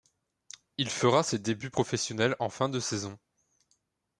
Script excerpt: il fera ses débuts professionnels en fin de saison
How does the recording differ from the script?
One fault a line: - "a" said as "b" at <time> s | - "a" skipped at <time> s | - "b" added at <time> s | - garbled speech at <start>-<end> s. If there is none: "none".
none